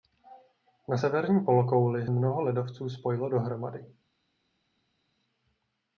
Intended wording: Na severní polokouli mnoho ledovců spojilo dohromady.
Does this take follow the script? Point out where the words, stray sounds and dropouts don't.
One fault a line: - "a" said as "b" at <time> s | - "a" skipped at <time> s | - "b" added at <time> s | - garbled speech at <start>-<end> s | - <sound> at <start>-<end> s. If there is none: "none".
none